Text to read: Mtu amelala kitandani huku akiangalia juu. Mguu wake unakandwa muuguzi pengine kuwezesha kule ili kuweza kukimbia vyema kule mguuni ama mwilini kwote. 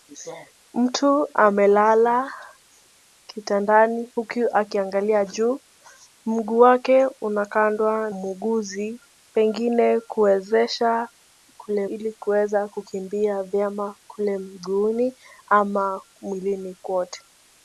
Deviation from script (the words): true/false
false